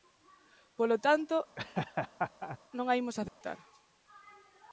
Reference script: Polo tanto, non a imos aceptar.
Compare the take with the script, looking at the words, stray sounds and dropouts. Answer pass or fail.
fail